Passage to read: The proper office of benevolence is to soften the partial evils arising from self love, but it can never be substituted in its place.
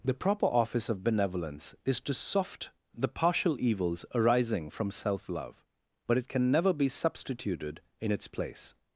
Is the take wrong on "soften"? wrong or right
wrong